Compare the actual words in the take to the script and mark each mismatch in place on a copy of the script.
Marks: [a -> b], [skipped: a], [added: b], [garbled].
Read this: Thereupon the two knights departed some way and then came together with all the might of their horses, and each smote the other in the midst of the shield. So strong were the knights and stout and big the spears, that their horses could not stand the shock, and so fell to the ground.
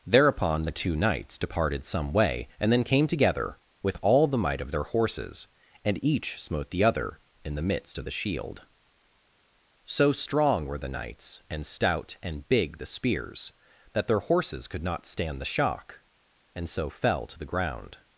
Thereupon the two knights departed some way and then came together with all the might of their horses, and each smote the other in the midst of the shield. So strong were the knights and stout and big the spears, that their horses could not stand the shock, and so fell to the ground.